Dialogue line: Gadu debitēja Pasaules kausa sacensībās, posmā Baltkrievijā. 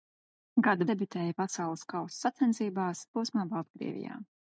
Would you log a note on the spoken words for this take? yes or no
no